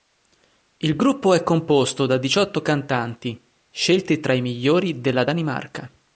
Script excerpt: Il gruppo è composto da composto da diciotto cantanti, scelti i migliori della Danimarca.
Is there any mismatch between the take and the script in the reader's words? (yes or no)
yes